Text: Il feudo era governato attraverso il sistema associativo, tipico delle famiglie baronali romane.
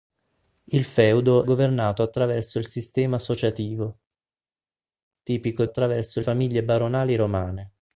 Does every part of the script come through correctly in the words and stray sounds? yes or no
no